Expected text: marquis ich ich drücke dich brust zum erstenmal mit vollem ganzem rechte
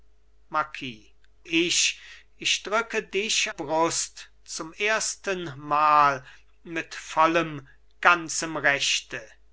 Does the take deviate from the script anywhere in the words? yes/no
no